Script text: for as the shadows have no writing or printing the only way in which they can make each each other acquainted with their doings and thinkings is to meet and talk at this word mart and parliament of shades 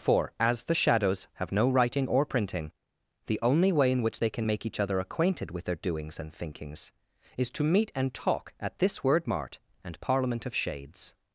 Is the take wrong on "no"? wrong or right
right